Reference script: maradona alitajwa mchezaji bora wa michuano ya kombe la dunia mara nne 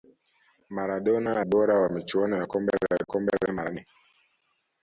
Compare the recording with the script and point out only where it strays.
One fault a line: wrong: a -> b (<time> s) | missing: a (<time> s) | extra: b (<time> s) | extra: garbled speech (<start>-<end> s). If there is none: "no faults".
missing: alitajwa mchezaji (1.4 s)
wrong: dunia -> kombe (3.0 s)